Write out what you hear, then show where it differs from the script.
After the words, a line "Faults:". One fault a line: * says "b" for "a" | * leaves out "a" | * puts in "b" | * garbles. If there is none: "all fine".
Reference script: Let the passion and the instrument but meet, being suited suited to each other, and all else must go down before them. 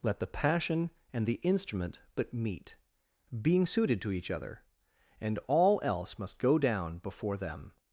Let the passion and the instrument but meet, being suited to each other, and all else must go down before them.
Faults:
* leaves out "suited"